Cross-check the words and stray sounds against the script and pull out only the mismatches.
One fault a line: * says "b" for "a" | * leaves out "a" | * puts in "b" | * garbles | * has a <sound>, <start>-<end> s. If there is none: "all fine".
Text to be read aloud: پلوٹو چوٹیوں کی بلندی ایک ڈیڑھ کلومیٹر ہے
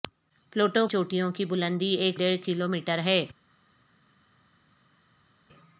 all fine